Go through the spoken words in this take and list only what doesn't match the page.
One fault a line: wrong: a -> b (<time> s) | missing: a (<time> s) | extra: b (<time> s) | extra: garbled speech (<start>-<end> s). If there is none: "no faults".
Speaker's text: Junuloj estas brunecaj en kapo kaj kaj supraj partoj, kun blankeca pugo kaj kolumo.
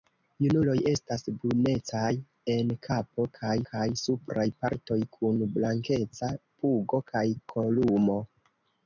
no faults